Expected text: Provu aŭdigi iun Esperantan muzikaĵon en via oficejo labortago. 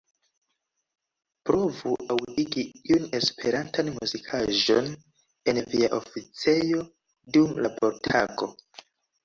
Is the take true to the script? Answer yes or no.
no